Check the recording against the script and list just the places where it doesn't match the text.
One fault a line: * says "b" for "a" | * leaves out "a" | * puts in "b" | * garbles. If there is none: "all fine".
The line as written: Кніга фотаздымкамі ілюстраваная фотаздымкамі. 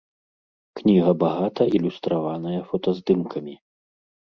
* says "багата" for "фотаздымкамі"